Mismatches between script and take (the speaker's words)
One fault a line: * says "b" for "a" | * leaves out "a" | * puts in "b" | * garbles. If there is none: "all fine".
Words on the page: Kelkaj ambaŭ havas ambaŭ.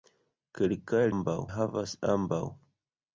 all fine